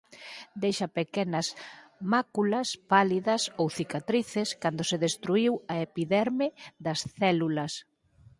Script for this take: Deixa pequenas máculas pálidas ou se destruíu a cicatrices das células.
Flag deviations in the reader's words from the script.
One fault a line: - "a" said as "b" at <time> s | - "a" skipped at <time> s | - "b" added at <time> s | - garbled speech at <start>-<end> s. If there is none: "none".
- "cicatrices cando" added at 3.8 s
- "cicatrices" said as "epiderme" at 5.9 s